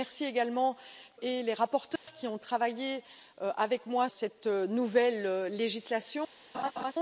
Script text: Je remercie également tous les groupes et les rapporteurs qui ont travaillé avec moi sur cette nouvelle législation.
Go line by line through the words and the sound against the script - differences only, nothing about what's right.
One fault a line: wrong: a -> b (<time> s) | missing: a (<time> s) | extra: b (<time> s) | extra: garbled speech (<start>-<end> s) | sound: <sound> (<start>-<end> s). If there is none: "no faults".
missing: tous les groupes (0.8 s)
sound: dropout (2.0-2.1 s)
missing: sur (4.1 s)
sound: laugh (6.5-6.9 s)